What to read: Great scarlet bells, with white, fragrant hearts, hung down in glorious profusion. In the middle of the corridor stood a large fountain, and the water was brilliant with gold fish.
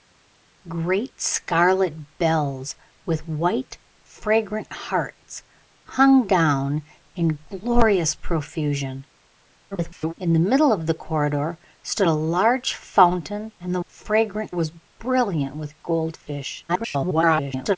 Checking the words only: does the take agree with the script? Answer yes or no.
no